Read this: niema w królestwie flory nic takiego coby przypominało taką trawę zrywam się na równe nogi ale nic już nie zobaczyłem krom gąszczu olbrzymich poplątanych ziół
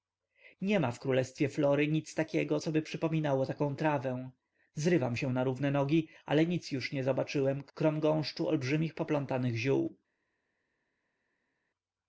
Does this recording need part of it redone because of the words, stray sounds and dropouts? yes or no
no